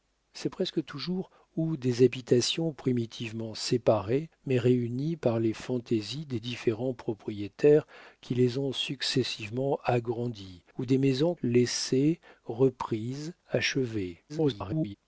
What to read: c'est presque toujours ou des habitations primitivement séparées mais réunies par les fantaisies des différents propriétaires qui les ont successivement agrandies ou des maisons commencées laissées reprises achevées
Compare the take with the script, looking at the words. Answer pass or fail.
fail